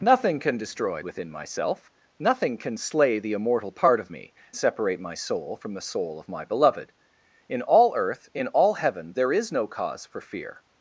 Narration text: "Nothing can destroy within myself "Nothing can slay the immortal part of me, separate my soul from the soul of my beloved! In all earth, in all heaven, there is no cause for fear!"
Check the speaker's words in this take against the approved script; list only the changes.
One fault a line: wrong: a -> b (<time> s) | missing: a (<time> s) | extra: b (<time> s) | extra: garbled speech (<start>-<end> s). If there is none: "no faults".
no faults